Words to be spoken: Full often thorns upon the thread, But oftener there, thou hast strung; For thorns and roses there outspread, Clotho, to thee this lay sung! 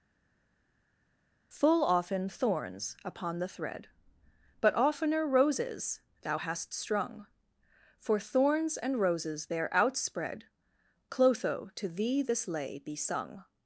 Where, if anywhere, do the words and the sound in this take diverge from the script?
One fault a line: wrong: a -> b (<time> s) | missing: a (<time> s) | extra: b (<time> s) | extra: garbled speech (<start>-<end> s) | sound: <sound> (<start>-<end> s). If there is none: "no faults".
wrong: there -> roses (5.3 s)
extra: be (12.8 s)